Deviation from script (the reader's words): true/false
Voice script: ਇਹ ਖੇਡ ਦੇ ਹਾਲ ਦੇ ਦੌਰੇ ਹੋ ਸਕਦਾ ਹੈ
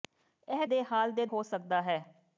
true